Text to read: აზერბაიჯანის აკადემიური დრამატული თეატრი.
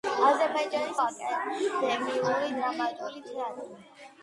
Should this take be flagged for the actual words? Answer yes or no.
no